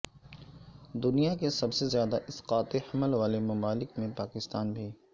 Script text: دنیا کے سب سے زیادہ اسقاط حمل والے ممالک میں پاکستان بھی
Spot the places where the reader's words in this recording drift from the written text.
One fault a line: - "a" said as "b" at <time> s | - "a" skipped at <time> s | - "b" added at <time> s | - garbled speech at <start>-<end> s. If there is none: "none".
none